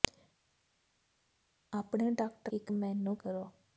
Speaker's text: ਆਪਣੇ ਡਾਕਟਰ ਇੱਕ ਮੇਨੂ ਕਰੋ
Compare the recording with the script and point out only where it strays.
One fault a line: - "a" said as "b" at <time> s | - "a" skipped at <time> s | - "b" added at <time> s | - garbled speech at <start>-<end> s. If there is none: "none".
none